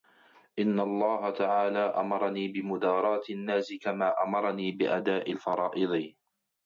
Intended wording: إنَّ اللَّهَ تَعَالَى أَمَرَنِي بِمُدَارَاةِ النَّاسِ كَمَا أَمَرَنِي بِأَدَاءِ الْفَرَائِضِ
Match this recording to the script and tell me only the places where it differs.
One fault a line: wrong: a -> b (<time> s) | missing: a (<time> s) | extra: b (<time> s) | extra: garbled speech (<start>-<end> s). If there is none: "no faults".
no faults